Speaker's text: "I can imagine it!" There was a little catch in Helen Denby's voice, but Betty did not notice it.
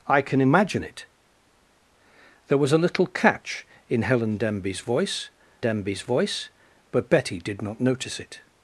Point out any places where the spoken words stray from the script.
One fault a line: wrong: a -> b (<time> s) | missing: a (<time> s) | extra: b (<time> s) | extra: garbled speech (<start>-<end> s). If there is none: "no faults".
extra: Denby's voice (5.6 s)